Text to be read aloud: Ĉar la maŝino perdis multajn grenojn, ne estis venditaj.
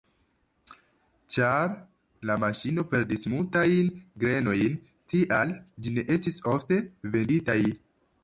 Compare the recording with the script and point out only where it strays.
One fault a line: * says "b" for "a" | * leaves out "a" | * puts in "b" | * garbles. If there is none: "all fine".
* puts in "tial ĝi"
* puts in "ofte"